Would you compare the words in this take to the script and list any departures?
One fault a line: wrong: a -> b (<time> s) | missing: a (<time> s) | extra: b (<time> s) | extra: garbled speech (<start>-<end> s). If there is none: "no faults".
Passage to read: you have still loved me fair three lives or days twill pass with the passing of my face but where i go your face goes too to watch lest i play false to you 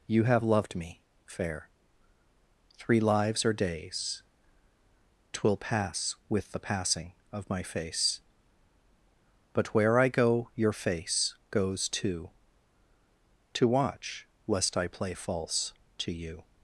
missing: still (0.4 s)